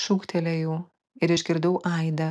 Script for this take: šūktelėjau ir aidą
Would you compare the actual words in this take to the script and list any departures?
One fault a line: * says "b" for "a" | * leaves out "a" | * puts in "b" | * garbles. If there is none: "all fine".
* puts in "išgirdau"